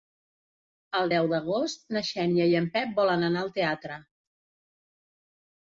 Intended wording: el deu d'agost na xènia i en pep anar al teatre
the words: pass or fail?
fail